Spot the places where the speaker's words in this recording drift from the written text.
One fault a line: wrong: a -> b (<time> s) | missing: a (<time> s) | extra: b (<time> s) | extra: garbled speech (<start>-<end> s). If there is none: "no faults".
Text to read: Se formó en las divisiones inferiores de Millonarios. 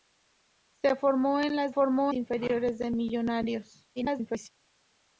wrong: divisiones -> formó (1.7 s)
extra: garbled speech (4.0-4.5 s)